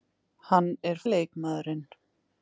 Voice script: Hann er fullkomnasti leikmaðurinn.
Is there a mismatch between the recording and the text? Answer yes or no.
yes